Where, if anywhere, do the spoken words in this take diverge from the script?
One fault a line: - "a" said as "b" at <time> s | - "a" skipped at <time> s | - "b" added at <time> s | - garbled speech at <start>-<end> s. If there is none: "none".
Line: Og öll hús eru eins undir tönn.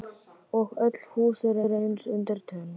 - "eru" added at 1.7 s